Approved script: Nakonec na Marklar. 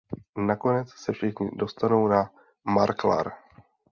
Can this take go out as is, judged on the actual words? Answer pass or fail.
fail